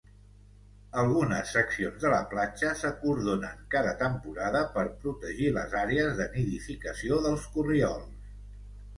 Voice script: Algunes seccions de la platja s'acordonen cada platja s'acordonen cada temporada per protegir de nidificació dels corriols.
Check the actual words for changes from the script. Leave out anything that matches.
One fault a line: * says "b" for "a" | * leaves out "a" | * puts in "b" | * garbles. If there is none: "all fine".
* leaves out "platja s'acordonen cada"
* puts in "les àrees"